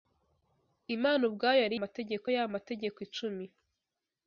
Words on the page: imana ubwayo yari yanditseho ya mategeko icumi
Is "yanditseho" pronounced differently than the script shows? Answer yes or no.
yes